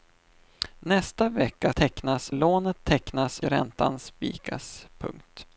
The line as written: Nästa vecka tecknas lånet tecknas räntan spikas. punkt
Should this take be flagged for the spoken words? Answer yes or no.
no